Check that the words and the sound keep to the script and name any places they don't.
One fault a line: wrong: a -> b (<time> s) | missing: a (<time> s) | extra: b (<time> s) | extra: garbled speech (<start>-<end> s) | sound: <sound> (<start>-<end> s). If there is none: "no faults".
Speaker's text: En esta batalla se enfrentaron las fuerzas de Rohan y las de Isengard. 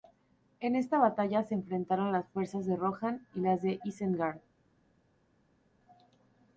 no faults